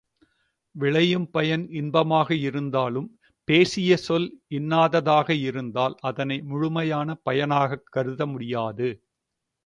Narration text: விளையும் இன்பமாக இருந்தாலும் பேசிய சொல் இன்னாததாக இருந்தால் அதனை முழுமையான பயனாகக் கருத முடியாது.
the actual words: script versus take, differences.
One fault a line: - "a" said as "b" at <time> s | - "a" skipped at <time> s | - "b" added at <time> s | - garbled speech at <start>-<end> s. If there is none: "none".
- "பயன்" added at 1.3 s